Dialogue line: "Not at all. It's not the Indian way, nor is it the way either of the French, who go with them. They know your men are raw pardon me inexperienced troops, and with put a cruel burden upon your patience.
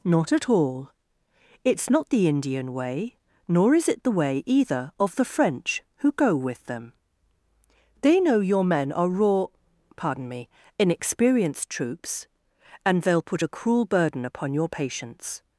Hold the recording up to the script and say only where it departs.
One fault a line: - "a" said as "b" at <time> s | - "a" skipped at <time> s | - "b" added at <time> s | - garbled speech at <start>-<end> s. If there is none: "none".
- "with" said as "they'll" at 13.0 s